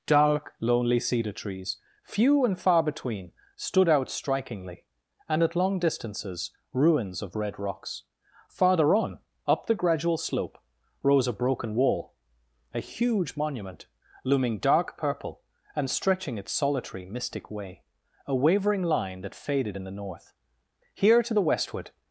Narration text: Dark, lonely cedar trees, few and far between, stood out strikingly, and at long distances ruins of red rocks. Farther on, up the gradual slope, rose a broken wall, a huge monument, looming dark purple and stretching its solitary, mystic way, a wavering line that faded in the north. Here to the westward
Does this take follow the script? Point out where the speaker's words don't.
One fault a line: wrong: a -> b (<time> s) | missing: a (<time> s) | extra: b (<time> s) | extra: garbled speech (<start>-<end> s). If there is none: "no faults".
no faults